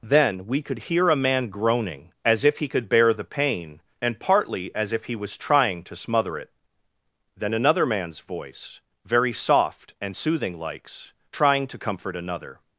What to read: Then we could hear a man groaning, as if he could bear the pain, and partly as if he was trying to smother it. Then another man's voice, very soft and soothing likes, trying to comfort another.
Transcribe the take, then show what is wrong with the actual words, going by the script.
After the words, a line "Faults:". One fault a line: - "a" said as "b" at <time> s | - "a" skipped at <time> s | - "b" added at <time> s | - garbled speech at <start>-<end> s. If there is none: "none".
Then we could hear a man groaning, as if he could bear the pain, and partly as if he was trying to smother it. Then another man's voice, very soft and soothing likes, trying to comfort another.
Faults:
none